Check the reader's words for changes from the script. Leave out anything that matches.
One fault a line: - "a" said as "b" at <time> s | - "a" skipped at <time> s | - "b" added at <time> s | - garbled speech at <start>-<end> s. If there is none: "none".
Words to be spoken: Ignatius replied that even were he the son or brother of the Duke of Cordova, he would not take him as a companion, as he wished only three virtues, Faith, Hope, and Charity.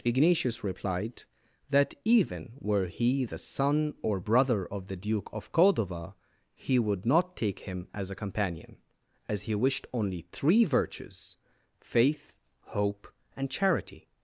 none